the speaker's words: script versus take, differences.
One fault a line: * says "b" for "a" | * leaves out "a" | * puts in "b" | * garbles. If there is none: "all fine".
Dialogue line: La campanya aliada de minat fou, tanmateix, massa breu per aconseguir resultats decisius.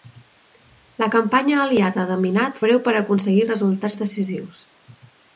* leaves out "fou tanmateix massa"